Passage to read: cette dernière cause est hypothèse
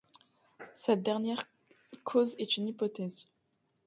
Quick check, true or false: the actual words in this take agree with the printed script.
false